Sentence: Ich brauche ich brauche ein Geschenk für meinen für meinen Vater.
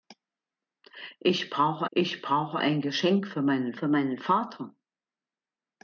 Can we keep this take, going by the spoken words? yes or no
yes